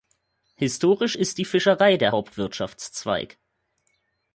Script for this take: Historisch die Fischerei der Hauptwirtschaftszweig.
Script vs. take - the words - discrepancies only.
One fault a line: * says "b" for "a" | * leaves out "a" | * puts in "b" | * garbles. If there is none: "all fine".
* puts in "ist"